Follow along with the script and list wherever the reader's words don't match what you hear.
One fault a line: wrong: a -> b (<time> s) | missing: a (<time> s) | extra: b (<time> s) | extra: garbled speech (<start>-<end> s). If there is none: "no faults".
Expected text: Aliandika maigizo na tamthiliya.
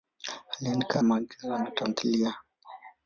no faults